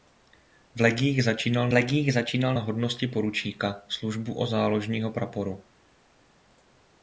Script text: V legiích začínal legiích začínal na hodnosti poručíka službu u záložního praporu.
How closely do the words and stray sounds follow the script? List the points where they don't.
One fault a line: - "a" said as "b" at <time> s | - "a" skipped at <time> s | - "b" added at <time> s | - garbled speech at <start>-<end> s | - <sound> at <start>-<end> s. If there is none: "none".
none